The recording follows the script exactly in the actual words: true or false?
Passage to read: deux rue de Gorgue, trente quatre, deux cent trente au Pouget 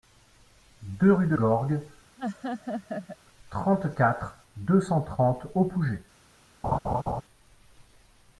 true